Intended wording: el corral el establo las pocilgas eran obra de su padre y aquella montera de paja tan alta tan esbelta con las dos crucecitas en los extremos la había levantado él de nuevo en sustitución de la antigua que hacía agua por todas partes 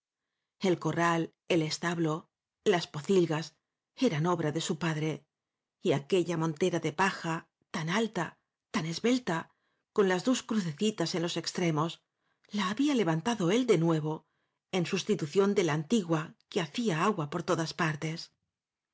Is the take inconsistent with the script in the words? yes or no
no